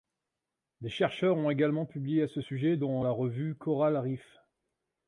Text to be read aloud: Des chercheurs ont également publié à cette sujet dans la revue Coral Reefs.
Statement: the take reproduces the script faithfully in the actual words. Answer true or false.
false